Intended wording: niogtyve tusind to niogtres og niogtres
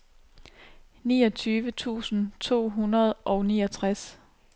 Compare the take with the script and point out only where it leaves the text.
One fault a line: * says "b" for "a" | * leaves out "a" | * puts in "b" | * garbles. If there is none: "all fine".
* says "hundrede" for "niogtres"